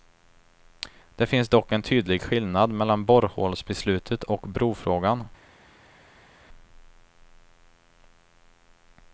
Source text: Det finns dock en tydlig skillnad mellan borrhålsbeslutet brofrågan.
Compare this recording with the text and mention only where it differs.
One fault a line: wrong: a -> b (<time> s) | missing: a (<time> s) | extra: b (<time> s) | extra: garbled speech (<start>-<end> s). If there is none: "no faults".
extra: och (4.2 s)